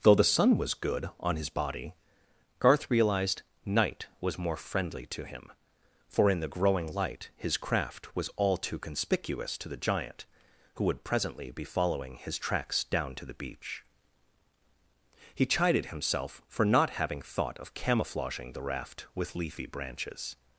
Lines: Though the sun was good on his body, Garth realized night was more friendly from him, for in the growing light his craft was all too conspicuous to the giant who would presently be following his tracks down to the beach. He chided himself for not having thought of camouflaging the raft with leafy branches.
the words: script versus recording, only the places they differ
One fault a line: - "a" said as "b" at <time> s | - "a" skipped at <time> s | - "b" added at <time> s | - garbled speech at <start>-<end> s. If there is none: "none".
- "from" said as "to" at 5.1 s